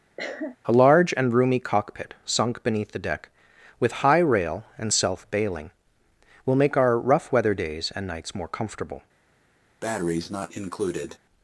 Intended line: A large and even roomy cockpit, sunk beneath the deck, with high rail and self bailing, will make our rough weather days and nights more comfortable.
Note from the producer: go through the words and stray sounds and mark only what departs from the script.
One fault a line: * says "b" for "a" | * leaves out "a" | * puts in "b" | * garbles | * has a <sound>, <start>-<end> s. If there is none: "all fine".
* has a cough, 0.2-0.6 s
* leaves out "even"
* has a breath, 9.8-11.2 s